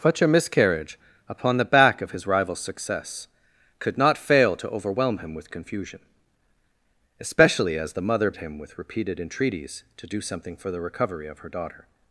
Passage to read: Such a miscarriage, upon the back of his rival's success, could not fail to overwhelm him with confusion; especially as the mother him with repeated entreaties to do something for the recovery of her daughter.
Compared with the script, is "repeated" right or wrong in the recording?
right